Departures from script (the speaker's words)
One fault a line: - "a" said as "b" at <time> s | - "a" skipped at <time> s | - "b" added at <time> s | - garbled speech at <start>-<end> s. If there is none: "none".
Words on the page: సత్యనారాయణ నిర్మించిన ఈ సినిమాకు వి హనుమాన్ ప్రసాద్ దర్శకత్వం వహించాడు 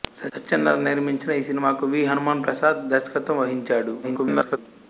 - garbled speech at 4.0-4.6 s